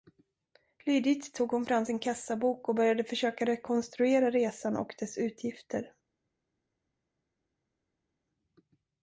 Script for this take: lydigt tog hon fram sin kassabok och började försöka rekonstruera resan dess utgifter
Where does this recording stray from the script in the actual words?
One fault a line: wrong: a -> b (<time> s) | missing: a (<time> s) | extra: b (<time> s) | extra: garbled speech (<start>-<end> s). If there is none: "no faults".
extra: och (4.8 s)